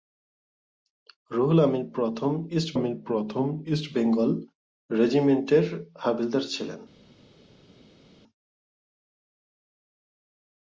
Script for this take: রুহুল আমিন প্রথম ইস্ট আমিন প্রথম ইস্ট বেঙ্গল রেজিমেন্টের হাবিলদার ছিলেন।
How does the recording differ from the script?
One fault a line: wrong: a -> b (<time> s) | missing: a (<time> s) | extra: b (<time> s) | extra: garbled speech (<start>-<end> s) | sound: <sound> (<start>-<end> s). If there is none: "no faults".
no faults